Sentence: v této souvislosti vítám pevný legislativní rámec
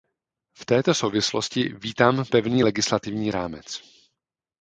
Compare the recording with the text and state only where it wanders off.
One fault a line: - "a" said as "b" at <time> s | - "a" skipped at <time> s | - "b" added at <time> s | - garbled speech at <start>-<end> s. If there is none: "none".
none